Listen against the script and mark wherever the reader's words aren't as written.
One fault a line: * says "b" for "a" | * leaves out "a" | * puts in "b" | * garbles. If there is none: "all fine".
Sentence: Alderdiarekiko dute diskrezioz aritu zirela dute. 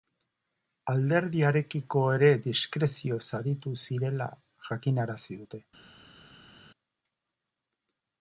* says "ere" for "dute"
* puts in "jakinarazi"